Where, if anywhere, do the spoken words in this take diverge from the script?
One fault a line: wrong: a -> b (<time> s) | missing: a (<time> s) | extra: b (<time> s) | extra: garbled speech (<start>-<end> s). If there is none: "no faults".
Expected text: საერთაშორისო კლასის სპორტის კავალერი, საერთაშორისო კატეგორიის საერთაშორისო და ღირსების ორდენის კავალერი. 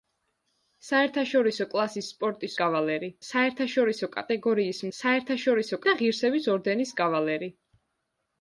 no faults